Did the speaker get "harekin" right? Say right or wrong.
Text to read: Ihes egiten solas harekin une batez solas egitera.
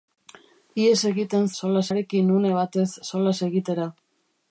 right